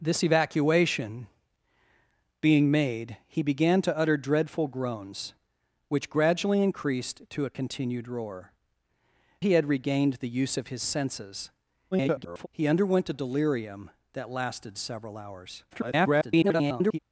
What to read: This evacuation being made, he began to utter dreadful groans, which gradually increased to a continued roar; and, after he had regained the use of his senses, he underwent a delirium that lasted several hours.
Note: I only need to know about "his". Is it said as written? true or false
true